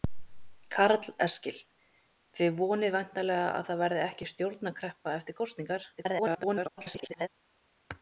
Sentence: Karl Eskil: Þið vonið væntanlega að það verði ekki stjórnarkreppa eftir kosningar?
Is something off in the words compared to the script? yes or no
yes